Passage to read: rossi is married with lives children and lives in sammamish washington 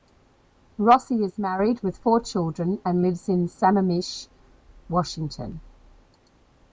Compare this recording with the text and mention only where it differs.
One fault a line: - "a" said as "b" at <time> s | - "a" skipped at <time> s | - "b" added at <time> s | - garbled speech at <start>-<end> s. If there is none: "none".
- "lives" said as "four" at 2.0 s